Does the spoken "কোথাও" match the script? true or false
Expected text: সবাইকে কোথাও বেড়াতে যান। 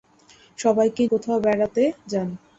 true